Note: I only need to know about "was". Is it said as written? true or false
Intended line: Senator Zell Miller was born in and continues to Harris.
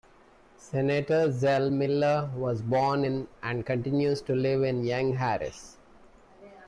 true